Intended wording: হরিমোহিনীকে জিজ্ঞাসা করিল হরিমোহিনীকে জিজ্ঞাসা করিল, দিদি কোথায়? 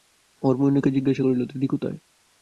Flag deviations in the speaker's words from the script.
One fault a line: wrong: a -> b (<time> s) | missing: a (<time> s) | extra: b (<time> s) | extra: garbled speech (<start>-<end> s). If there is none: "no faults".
missing: হরিমোহিনীকে জিজ্ঞাসা করিল (1.4 s)